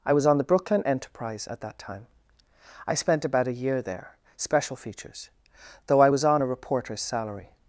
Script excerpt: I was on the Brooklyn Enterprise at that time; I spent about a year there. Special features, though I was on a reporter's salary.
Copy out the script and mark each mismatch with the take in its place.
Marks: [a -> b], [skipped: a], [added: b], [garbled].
I was on the Brooklyn Enterprise at that time; I spent about a year there. Special features, though I was on a reporter's salary.